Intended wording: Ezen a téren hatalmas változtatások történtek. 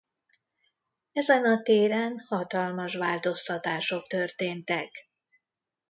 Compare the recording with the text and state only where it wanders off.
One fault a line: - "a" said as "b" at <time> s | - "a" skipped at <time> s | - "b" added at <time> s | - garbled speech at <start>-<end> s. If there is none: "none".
none